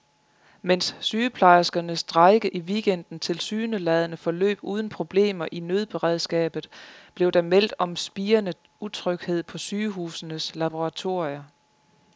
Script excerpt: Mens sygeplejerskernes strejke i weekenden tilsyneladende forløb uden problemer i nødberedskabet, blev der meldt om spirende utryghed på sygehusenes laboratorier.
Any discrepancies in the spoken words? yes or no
no